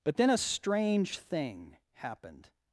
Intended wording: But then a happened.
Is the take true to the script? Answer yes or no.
no